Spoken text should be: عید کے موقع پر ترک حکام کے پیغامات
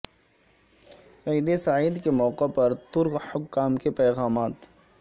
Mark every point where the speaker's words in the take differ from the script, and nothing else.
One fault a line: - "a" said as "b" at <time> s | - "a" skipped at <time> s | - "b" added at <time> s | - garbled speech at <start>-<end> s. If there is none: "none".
- "سعید" added at 1.6 s